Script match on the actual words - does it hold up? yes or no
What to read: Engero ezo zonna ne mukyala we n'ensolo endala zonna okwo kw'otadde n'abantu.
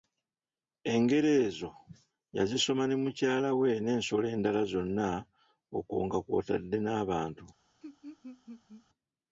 no